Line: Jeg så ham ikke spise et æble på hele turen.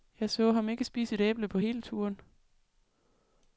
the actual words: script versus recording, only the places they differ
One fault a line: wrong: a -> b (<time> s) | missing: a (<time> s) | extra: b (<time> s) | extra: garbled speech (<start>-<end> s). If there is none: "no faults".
no faults